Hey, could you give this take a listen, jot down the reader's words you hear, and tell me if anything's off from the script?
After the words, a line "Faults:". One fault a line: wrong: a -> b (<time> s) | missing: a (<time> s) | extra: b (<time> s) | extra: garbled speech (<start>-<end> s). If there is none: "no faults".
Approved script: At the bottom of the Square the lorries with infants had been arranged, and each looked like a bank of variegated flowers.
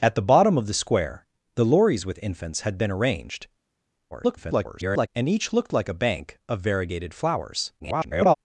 At the bottom of the Square the lorries with infants had been arranged, [garbled] and each looked like a bank of variegated flowers. [garbled]
Faults:
extra: garbled speech (4.1-5.1 s)
extra: garbled speech (7.8-8.3 s)